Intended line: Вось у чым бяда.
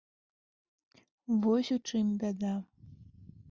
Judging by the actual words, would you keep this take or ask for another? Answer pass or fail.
pass